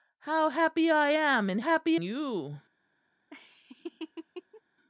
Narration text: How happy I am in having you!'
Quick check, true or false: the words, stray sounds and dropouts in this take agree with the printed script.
false